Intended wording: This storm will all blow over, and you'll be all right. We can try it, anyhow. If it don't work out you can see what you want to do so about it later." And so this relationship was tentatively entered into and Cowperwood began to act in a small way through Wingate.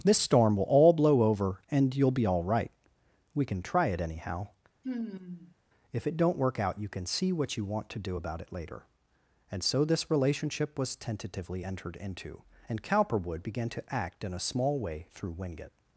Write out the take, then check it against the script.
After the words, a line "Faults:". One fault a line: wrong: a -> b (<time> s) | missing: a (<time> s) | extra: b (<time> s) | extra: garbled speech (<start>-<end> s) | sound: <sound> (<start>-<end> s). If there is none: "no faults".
This storm will all blow over, and you'll be all right. We can try it, anyhow. If it don't work out you can see what you want to do about it later." And so this relationship was tentatively entered into and Cowperwood began to act in a small way through Wingate.
Faults:
sound: sigh (4.8-5.6 s)
missing: so (8.2 s)